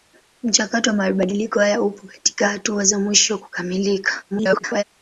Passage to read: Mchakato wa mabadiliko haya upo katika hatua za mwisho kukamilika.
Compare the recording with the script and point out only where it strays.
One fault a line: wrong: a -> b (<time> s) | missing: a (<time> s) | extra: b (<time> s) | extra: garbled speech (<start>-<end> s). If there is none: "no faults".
extra: garbled speech (4.3-4.8 s)